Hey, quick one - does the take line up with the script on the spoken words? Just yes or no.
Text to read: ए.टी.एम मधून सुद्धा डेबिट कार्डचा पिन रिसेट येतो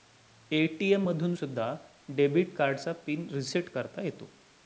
no